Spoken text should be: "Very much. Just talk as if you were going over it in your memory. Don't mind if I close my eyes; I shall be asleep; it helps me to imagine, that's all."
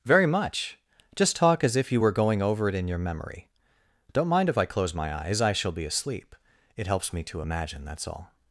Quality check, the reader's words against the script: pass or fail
pass